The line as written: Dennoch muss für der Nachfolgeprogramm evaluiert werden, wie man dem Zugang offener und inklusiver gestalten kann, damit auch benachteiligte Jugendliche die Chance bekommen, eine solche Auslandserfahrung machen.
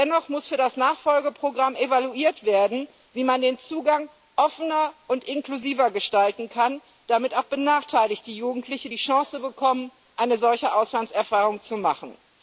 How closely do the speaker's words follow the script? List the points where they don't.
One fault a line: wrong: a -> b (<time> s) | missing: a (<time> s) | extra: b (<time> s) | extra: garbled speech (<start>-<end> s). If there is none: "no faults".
wrong: der -> das (0.6 s)
wrong: dem -> den (3.4 s)
extra: zu (11.6 s)